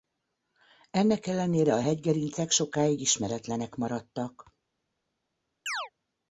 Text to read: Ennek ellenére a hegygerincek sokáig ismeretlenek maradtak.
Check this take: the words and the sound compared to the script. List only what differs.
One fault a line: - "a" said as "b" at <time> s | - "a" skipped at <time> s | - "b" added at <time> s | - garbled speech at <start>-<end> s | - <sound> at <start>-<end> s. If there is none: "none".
- chirp at 5.7-5.9 s